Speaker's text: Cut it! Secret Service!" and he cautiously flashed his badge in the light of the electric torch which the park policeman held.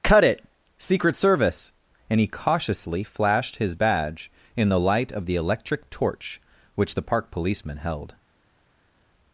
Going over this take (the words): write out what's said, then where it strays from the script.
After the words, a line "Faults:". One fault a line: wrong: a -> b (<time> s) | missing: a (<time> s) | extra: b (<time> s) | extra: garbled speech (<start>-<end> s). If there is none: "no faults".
Cut it! Secret Service!" and he cautiously flashed his badge in the light of the electric torch which the park policeman held.
Faults:
no faults